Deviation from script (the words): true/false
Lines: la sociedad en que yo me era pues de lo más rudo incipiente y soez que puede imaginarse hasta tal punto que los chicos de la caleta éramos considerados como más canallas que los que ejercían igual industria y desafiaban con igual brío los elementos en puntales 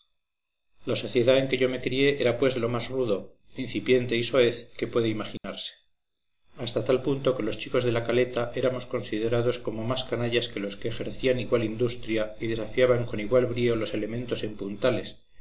true